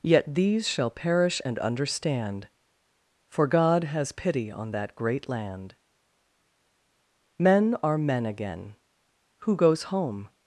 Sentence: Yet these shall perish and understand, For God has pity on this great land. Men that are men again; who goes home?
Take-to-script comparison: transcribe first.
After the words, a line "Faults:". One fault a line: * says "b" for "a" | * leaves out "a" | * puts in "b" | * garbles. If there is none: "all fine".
Yet these shall perish and understand, For God has pity on that great land. Men are men again; who goes home?
Faults:
* says "that" for "this"
* leaves out "that"